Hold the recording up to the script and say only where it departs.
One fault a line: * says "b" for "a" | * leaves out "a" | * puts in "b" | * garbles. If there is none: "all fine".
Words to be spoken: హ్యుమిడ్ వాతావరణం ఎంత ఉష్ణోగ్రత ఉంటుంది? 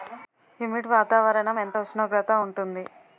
all fine